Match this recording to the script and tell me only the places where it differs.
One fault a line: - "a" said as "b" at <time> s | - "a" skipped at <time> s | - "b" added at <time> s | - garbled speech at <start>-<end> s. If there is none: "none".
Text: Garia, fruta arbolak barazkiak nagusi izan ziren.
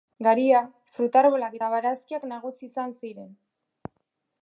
- "eta" added at 1.6 s